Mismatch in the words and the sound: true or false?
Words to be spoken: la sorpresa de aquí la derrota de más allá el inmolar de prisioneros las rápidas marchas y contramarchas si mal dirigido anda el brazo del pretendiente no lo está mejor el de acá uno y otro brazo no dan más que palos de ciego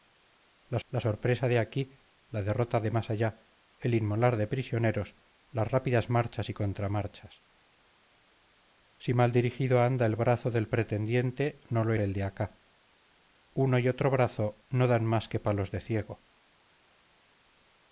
true